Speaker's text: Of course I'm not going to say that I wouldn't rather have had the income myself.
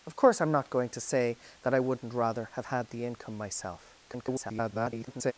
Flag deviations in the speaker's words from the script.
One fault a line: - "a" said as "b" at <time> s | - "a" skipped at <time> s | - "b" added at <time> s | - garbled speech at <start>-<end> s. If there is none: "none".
- garbled speech at 4.1-5.3 s